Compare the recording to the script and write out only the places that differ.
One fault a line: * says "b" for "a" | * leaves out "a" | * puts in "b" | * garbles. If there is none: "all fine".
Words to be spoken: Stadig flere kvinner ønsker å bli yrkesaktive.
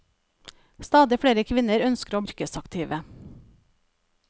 * leaves out "bli"